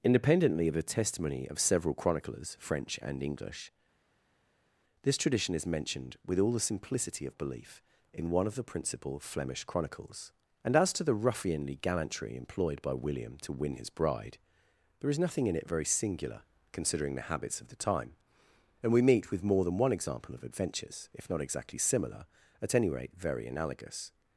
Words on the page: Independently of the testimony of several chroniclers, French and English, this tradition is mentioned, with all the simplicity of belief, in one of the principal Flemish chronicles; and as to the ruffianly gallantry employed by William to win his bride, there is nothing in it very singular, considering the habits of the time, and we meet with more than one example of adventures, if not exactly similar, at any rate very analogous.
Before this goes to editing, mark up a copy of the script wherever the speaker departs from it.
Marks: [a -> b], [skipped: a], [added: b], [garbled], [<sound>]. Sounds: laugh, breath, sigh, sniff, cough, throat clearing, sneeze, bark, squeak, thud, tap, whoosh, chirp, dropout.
Independently of the testimony of several chroniclers, French and English, this tradition is mentioned, with all the simplicity of belief, in one of the principal Flemish chronicles; and as to the ruffianly gallantry employed by William to win his bride, there is nothing in it very singular, considering the habits of the time, and we meet with more than one example of adventures, if not exactly similar, at any rate very analogous.